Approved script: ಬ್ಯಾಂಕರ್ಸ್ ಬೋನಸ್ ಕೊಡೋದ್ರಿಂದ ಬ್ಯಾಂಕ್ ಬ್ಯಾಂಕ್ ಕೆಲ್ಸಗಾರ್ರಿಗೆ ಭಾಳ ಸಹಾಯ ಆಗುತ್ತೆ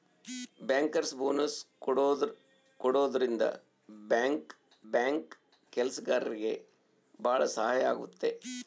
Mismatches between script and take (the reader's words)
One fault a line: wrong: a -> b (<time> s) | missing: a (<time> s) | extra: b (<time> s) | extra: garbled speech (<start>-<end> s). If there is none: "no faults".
no faults